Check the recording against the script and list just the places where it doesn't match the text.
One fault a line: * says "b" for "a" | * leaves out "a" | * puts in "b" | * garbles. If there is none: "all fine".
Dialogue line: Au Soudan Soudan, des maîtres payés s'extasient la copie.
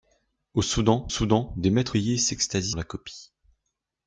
all fine